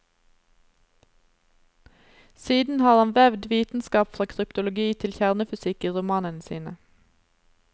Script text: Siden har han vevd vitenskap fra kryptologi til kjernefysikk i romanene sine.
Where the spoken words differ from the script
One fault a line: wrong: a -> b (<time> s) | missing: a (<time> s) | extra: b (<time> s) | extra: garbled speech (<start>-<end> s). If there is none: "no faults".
no faults